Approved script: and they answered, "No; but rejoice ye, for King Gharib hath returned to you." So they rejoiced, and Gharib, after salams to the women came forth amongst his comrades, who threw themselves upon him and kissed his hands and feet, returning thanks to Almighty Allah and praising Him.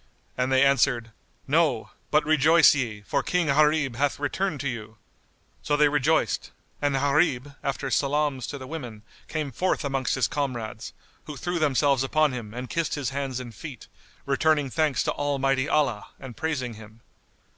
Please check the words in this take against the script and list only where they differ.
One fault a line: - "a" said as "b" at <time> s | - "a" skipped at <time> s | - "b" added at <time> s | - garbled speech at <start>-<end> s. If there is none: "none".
none